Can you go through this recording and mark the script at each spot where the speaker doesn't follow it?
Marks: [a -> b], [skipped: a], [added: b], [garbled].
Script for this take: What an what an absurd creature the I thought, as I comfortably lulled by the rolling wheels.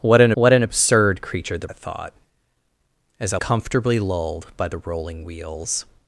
What an what an absurd creature the I thought, as I comfortably lulled by the rolling wheels.